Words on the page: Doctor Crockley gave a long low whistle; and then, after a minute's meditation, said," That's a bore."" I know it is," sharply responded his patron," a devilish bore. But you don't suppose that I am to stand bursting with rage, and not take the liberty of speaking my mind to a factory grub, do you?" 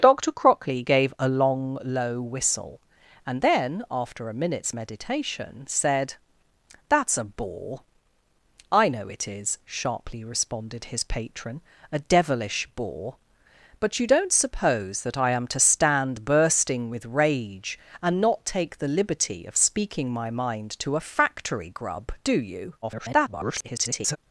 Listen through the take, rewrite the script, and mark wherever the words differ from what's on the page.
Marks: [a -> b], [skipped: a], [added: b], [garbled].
Doctor Crockley gave a long low whistle; and then, after a minute's meditation, said," That's a bore."" I know it is," sharply responded his patron," a devilish bore. But you don't suppose that I am to stand bursting with rage, and not take the liberty of speaking my mind to a factory grub, do you?" [garbled]